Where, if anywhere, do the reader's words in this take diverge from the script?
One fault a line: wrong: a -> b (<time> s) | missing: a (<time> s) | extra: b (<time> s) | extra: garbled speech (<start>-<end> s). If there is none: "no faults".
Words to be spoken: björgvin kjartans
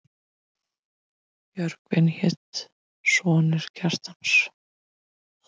extra: hét sonur (2.1 s)